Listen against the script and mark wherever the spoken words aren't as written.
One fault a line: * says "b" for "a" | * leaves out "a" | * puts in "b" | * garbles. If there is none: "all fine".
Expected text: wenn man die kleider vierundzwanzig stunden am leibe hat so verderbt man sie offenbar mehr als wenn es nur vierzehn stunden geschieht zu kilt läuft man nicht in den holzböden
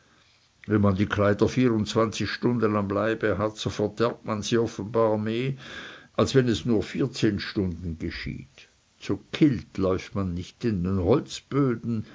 all fine